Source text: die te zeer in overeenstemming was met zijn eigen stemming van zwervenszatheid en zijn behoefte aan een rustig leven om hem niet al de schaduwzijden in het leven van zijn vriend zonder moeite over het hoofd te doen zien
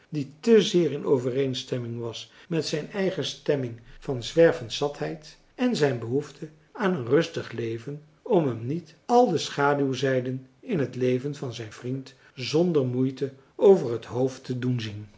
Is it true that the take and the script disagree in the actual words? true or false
false